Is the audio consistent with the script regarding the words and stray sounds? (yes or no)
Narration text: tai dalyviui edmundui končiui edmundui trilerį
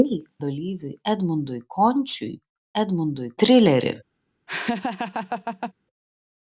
no